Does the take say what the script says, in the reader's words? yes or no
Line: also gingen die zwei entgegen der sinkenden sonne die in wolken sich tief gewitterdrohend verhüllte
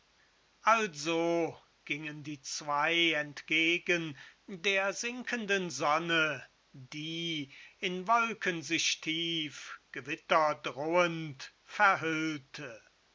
yes